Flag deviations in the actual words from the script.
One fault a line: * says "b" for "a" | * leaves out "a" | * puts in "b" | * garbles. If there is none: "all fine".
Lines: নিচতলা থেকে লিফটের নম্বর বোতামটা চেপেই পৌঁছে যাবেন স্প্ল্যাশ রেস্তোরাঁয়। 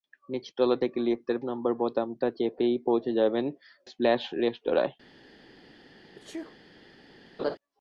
all fine